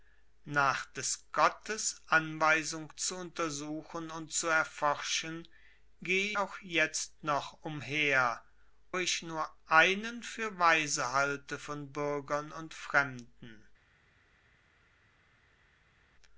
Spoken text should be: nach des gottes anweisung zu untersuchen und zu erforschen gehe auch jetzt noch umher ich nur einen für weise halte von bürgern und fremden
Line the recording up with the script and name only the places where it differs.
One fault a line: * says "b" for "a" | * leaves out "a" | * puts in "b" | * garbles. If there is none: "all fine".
all fine